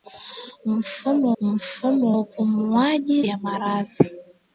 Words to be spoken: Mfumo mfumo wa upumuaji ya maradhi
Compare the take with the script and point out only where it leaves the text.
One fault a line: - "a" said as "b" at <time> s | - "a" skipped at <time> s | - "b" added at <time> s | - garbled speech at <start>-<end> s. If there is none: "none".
none